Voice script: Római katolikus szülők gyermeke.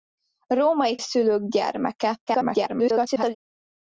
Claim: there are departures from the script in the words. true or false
true